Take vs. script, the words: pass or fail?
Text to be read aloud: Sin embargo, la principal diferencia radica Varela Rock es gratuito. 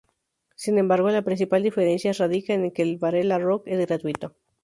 fail